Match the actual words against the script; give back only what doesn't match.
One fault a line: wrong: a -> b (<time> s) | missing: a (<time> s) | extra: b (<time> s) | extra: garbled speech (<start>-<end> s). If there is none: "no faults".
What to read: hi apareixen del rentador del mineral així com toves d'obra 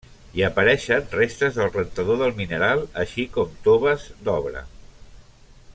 extra: restes (1.1 s)